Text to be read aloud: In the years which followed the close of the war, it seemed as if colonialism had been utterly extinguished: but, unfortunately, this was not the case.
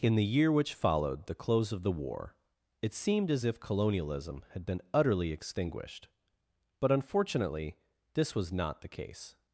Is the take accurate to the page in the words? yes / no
no